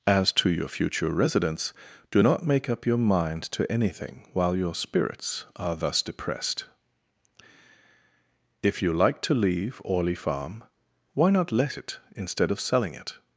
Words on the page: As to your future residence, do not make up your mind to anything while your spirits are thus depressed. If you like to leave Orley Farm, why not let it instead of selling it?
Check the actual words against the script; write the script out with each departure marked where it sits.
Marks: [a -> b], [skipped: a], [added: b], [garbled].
As to your future residence, do not make up your mind to anything while your spirits are thus depressed. If you like to leave Orley Farm, why not let it instead of selling it?